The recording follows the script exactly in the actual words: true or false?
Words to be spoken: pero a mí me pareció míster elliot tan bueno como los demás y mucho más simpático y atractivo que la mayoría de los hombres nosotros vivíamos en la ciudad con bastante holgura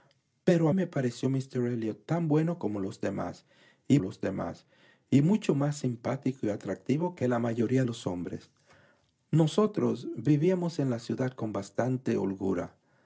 false